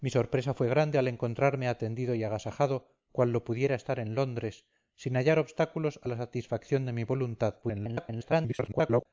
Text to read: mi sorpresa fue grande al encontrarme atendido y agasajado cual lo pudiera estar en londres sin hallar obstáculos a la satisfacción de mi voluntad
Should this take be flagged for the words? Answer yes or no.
yes